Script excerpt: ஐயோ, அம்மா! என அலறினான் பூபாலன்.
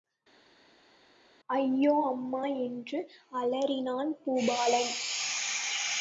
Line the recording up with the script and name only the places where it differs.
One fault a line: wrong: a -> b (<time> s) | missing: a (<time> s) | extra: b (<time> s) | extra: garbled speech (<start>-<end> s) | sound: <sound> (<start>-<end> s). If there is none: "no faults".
wrong: என -> என்று (2.4 s)